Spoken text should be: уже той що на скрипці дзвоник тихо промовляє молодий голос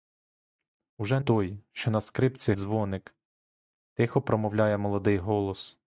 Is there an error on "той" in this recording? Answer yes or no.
no